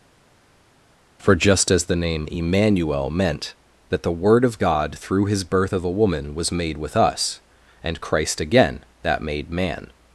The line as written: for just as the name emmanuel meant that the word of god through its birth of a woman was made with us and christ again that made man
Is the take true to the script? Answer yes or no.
no